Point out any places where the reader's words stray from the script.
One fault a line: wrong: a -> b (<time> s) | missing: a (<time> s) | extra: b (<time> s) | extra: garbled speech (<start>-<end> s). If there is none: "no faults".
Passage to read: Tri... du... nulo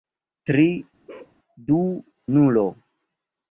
no faults